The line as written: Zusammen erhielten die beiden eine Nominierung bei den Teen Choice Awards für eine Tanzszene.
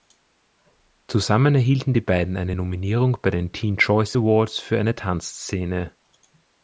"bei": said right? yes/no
yes